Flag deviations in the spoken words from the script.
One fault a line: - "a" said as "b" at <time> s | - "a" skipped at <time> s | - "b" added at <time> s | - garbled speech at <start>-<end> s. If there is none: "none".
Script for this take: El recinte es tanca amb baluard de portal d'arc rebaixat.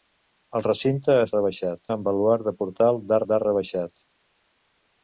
- "tanca" said as "rebaixat" at 1.4 s
- "d'arc" added at 3.3 s